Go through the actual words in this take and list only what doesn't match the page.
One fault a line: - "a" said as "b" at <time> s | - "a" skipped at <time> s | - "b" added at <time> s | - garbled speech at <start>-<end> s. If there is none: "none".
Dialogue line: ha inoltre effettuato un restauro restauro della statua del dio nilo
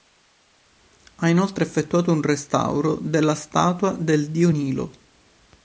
- "restauro" skipped at 3.0 s